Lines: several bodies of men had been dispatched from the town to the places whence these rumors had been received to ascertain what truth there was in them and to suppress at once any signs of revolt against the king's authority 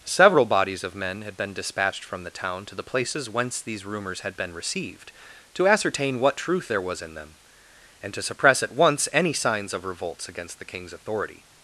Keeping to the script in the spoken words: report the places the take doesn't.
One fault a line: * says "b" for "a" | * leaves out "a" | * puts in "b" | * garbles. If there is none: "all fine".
* says "revolts" for "revolt"